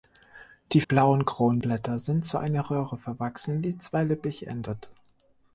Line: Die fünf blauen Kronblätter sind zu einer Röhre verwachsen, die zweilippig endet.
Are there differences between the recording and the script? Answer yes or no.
yes